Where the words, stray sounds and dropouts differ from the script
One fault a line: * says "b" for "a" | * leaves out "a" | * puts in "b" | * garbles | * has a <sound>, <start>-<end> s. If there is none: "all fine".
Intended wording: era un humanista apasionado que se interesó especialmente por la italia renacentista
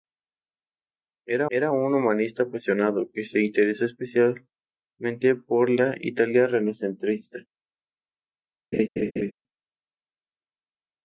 * puts in "era"
* has a laugh, 8.7-9.3 s